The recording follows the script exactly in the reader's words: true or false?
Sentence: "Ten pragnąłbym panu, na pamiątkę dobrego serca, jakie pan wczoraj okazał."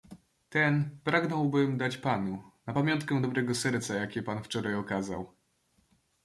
false